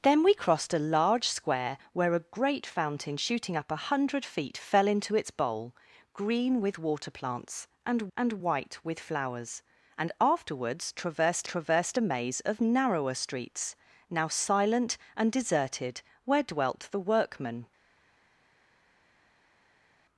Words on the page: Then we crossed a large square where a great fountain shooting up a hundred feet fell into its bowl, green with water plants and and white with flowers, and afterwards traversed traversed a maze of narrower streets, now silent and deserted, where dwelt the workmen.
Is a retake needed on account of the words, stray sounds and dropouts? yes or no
no